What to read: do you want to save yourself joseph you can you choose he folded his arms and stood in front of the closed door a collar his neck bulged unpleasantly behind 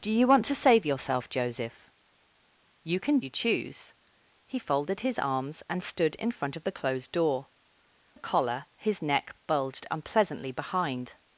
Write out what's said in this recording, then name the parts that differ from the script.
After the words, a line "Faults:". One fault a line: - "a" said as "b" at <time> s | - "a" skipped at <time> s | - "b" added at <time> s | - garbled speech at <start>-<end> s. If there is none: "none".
do you want to save yourself joseph you can you choose he folded his arms and stood in front of the closed door a collar his neck bulged unpleasantly behind
Faults:
none